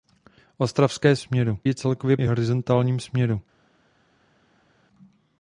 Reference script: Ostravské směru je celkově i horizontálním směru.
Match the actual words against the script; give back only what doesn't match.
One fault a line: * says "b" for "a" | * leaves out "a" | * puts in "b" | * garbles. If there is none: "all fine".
all fine